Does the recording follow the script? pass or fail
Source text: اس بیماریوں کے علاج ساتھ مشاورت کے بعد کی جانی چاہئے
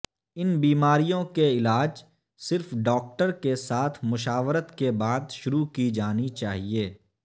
fail